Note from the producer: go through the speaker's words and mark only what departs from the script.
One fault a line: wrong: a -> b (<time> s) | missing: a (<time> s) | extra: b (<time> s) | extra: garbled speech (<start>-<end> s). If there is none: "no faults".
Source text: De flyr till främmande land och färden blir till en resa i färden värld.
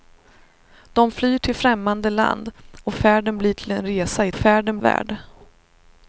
no faults